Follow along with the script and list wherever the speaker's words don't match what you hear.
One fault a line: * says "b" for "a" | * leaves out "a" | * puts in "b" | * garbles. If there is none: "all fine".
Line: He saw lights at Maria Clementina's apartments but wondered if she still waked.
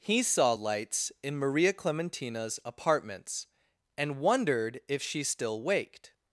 * says "in" for "at"
* says "and" for "but"